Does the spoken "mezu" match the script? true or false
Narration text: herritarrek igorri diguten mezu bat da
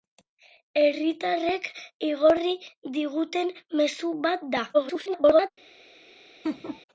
true